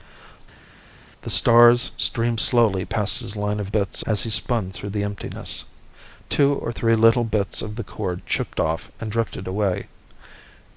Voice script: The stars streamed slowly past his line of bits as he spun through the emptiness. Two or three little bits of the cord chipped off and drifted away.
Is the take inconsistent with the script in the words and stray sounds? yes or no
no